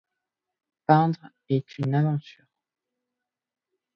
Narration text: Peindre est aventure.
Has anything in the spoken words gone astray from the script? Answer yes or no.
yes